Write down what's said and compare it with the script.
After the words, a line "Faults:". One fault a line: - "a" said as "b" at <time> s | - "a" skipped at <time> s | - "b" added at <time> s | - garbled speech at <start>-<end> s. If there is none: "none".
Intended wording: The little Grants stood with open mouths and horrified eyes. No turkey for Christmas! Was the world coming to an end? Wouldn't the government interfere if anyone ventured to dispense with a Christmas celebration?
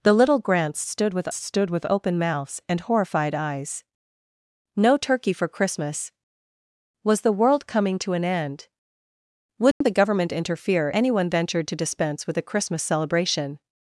The little Grants stood with stood with open mouths and horrified eyes. No turkey for Christmas! Was the world coming to an end? Wouldn't the government interfere anyone ventured to dispense with a Christmas celebration?
Faults:
- "stood with" added at 1.3 s
- "if" skipped at 10.9 s